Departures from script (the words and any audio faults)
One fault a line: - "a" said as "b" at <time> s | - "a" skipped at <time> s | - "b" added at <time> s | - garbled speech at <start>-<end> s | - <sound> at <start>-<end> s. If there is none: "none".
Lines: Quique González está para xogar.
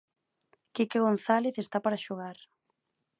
none